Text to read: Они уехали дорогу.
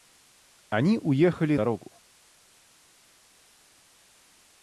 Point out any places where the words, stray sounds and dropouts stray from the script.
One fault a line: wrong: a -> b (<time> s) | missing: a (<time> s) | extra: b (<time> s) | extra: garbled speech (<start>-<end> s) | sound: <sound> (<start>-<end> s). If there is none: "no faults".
no faults